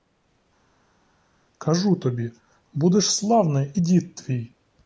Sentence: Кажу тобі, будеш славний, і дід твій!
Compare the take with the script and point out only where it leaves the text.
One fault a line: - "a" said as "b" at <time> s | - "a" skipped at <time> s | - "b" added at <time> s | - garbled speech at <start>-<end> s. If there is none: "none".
none